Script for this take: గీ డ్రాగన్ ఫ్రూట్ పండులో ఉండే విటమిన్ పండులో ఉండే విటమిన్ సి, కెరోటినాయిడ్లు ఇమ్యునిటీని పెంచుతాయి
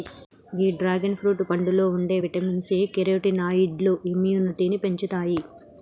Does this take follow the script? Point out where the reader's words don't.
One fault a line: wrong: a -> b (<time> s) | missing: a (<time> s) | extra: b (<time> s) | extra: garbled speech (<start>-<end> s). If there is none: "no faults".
missing: పండులో ఉండే విటమిన్ (2.6 s)